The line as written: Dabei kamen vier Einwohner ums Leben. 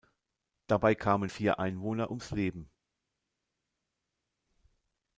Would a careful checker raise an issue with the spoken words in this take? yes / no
no